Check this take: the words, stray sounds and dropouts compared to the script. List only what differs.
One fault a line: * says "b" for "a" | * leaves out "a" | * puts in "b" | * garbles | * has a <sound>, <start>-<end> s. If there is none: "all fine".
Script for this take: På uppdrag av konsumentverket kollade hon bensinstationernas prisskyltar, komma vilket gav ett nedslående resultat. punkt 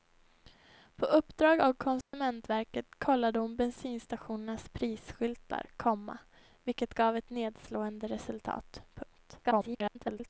* has a dropout, 2.0-2.1 s
* garbles